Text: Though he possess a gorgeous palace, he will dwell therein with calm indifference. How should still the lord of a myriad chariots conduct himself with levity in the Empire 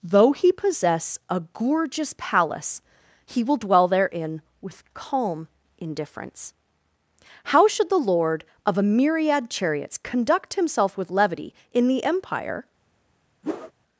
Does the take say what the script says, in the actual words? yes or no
no